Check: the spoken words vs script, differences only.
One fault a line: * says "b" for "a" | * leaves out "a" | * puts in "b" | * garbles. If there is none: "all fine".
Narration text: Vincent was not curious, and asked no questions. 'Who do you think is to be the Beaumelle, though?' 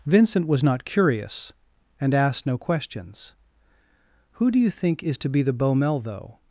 all fine